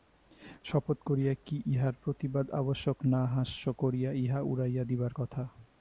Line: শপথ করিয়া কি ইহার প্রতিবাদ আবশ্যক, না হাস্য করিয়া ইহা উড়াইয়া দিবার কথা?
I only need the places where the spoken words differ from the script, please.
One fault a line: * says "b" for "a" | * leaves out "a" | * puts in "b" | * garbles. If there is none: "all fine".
all fine